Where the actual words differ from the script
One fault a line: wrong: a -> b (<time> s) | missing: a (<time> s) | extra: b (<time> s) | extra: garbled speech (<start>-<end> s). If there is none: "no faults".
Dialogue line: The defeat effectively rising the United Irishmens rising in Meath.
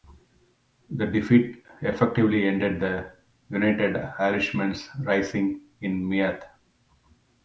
wrong: rising -> ended (2.5 s)